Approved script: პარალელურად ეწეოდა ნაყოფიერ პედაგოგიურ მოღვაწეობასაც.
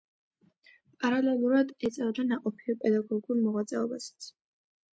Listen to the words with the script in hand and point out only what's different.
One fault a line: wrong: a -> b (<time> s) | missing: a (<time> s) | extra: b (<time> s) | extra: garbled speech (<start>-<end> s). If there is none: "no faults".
no faults